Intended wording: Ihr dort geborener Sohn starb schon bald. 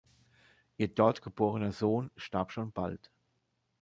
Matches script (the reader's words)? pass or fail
pass